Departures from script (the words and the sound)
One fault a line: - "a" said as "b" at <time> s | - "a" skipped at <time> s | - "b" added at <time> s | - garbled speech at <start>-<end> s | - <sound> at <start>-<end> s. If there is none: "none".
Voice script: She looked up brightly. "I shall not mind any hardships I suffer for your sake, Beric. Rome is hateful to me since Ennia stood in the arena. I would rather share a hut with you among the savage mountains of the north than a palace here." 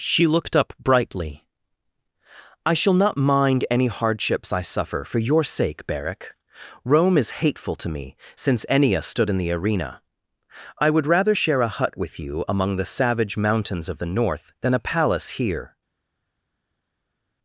none